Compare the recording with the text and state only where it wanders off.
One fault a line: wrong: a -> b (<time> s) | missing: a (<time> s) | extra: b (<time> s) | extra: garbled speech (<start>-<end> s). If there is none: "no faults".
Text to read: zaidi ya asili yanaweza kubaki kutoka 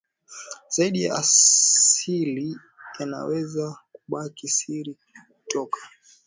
extra: siri (4.5 s)